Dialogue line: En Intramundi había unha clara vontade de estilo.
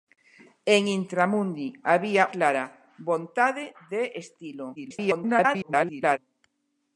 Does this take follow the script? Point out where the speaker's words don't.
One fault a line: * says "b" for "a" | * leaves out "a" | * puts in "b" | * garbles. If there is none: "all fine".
* leaves out "unha"
* garbles